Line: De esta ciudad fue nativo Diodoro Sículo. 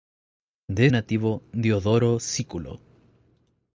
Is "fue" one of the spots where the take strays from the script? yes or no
yes